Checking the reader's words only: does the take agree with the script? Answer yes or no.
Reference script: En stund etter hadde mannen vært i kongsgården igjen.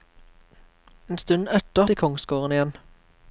no